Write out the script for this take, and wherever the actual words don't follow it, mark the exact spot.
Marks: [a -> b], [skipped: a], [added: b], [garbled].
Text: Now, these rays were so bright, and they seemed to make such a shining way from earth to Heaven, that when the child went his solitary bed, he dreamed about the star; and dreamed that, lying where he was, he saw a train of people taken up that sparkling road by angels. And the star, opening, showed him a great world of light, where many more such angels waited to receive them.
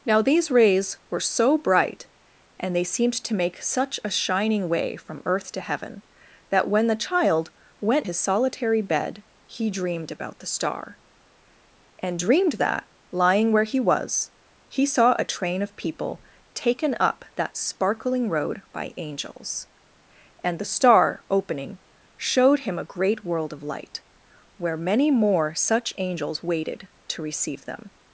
Now, these rays were so bright, and they seemed to make such a shining way from earth to Heaven, that when the child went his solitary bed, he dreamed about the star; and dreamed that, lying where he was, he saw a train of people taken up that sparkling road by angels. And the star, opening, showed him a great world of light, where many more such angels waited to receive them.